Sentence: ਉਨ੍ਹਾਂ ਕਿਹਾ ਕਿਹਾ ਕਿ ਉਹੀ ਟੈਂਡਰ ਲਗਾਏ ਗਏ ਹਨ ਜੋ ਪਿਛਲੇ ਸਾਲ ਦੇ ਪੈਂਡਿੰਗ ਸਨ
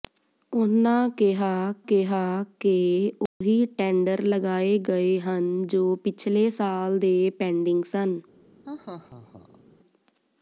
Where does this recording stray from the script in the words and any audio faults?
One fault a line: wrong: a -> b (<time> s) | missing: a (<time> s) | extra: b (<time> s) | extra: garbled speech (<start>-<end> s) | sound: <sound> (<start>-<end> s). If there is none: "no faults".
sound: dropout (3.3-3.4 s)
sound: laugh (8.6-9.6 s)